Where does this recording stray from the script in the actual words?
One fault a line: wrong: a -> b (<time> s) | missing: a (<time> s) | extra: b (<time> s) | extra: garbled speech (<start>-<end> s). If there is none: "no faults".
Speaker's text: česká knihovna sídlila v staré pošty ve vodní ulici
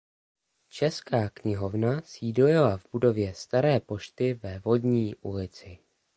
extra: budově (2.9 s)